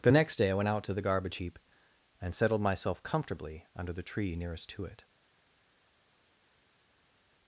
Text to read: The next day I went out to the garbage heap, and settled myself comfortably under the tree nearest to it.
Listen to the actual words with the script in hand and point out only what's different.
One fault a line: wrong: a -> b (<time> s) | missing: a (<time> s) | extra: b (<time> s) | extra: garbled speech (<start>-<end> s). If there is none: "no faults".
no faults